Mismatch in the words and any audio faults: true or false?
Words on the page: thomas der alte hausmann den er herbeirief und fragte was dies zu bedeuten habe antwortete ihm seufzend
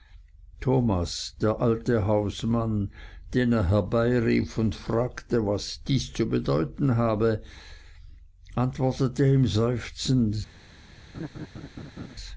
true